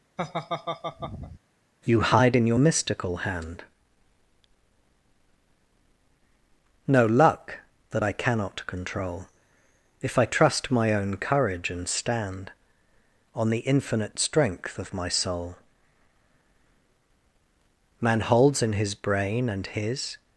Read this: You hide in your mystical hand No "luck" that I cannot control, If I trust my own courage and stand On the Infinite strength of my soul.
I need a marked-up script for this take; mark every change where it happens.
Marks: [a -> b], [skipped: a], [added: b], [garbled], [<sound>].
[laugh] You hide in your mystical hand No "luck" that I cannot control, If I trust my own courage and stand On the Infinite strength of my soul. [added: Man holds in his brain and his]